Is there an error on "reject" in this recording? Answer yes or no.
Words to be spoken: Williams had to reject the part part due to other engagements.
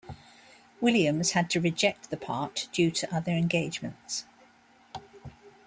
no